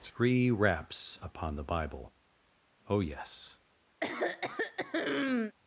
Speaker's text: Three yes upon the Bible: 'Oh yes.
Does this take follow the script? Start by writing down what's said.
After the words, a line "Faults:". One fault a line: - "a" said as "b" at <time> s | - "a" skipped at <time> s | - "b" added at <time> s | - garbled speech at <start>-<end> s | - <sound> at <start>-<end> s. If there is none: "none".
Three raps upon the Bible: 'Oh yes.
Faults:
- "yes" said as "raps" at 0.5 s
- throat clearing at 4.0-5.5 s